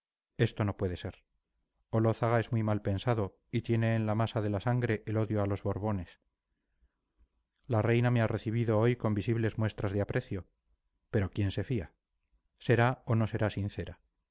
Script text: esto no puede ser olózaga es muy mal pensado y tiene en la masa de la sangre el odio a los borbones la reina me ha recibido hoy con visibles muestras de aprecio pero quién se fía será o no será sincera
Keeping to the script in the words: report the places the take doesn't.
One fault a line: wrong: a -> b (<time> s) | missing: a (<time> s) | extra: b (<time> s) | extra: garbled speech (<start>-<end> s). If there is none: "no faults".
no faults